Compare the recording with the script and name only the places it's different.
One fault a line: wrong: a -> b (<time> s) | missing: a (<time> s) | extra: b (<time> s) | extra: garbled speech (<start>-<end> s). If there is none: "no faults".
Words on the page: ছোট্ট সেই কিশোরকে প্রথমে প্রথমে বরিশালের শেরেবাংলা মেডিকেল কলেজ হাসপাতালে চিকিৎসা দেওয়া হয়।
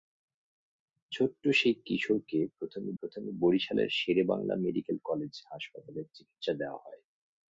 no faults